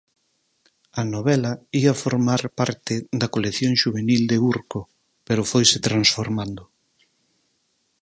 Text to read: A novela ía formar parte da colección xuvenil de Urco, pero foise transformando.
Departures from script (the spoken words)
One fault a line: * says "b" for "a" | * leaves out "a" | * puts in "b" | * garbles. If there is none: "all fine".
all fine